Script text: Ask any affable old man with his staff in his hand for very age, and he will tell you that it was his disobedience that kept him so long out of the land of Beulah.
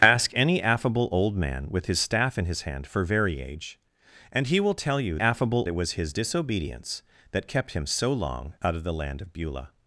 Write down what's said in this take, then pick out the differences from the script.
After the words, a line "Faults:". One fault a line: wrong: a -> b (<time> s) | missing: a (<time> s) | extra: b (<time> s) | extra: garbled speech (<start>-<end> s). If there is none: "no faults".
Ask any affable old man with his staff in his hand for very age, and he will tell you affable it was his disobedience that kept him so long out of the land of Beulah.
Faults:
wrong: that -> affable (5.2 s)